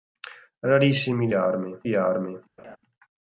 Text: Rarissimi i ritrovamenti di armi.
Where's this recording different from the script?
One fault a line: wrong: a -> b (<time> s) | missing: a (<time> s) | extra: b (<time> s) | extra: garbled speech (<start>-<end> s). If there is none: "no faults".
wrong: ritrovamenti -> armi (1.3 s)